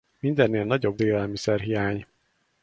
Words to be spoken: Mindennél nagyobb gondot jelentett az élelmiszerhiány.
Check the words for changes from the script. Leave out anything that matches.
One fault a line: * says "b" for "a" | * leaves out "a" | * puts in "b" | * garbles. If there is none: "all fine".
* leaves out "gondot jelentett az"